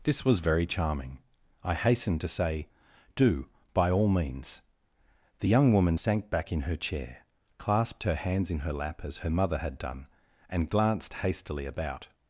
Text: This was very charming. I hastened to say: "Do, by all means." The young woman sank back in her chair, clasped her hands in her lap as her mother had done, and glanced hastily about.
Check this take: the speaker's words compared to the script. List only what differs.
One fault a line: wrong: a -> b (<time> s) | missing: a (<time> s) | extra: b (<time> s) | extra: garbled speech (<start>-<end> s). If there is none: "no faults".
no faults